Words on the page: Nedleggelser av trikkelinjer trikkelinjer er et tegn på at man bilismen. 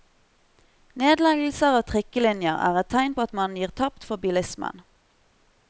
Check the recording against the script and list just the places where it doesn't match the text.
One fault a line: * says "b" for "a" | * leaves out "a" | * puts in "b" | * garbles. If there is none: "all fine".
* leaves out "trikkelinjer"
* puts in "gir tapt for"